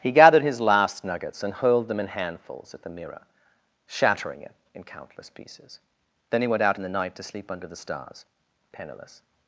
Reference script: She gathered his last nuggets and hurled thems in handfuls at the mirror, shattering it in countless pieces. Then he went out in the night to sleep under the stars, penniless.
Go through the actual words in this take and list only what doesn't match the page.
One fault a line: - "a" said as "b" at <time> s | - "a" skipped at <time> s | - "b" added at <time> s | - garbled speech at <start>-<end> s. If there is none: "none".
- "She" said as "He" at 0.0 s
- "thems" said as "them" at 1.9 s